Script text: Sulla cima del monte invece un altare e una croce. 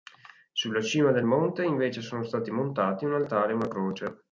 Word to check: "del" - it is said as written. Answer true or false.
true